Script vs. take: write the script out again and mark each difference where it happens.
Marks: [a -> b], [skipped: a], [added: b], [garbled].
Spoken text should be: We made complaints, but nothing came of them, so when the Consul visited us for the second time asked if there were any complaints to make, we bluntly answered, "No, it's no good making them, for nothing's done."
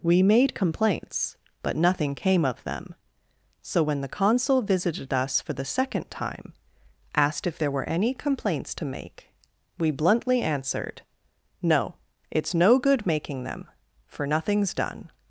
We made complaints, but nothing came of them, so when the Consul visited us for the second time asked if there were any complaints to make, we bluntly answered, "No, it's no good making them, for nothing's done."